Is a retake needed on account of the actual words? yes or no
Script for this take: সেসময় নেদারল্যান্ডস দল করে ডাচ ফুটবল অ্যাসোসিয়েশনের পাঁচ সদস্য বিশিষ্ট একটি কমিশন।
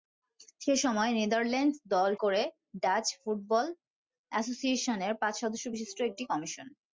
no